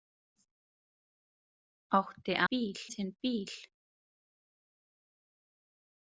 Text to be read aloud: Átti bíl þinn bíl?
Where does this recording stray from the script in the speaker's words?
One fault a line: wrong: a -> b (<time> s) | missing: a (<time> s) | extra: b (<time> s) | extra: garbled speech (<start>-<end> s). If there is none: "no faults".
no faults